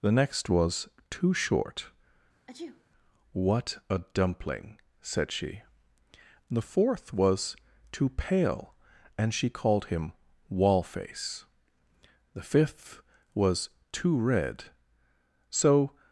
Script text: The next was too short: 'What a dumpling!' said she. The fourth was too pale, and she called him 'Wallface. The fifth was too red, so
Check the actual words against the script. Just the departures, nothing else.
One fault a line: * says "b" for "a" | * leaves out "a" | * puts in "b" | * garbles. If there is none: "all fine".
all fine